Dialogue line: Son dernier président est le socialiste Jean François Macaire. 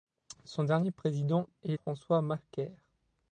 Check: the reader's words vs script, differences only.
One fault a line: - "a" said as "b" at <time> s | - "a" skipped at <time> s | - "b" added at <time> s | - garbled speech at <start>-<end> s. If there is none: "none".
- "le socialiste Jean" skipped at 1.8 s